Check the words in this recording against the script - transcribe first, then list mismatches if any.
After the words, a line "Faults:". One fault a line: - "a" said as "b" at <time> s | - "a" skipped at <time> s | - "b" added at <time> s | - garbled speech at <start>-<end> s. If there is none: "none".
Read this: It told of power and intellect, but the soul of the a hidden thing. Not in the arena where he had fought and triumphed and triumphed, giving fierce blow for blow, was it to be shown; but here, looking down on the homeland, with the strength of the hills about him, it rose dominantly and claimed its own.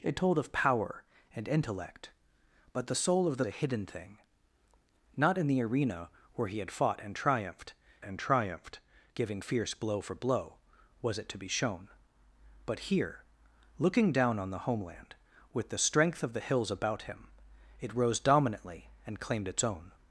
It told of power and intellect, but the soul of the a hidden thing. Not in the arena where he had fought and triumphed and triumphed, giving fierce blow for blow, was it to be shown; but here, looking down on the homeland, with the strength of the hills about him, it rose dominantly and claimed its own.
Faults:
none